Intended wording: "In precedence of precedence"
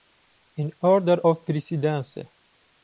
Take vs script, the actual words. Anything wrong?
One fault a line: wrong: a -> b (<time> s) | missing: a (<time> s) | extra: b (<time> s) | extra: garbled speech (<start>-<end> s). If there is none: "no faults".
wrong: precedence -> order (0.8 s)